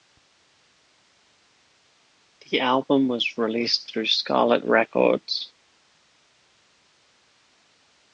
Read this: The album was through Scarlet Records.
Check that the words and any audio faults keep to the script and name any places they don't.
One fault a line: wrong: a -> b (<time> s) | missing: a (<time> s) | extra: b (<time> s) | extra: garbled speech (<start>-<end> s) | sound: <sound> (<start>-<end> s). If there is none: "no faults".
extra: released (3.4 s)